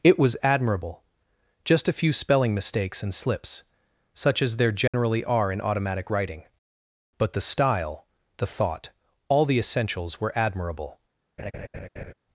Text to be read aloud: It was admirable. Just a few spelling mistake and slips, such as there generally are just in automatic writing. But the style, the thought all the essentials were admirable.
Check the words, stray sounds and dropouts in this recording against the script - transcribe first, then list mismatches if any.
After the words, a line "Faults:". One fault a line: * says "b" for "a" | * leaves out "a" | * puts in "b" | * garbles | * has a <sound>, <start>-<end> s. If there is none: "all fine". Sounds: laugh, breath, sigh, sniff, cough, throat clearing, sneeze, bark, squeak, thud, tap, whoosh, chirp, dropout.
It was admirable. Just a few spelling mistakes and slips, such as there generally are in automatic writing. But the style, the thought all the essentials were admirable.
Faults:
* says "mistakes" for "mistake"
* has a dropout, 4.9-4.9 s
* leaves out "just"
* has a laugh, 11.4-12.1 s